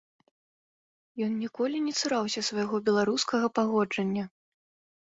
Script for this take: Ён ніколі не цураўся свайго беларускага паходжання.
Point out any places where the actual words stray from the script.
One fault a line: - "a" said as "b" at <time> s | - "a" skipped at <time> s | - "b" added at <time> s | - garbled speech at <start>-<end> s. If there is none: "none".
none